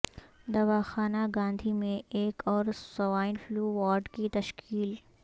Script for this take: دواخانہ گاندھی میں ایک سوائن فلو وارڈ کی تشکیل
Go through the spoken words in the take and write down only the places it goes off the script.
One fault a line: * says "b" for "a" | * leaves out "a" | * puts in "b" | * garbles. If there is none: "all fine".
* puts in "اور"